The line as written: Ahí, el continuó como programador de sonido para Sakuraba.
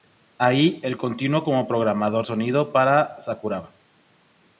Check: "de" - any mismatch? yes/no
yes